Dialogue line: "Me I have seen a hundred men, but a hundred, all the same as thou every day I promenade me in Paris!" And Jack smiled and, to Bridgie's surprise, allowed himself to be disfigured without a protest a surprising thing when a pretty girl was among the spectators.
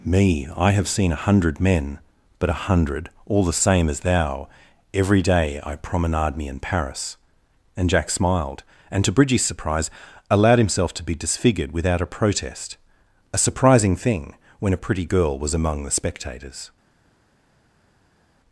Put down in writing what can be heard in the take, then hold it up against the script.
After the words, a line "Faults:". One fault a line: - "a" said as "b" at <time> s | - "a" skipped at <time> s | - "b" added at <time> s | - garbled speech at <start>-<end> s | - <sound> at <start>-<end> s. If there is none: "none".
"Me I have seen a hundred men, but a hundred, all the same as thou every day I promenade me in Paris!" And Jack smiled and, to Bridgie's surprise, allowed himself to be disfigured without a protest a surprising thing when a pretty girl was among the spectators.
Faults:
none